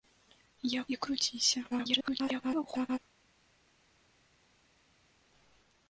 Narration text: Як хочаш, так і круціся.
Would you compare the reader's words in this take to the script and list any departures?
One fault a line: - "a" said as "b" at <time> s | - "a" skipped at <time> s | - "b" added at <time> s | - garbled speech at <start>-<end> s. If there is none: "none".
- "хочаш так" skipped at 0.8 s
- garbled speech at 1.7-3.0 s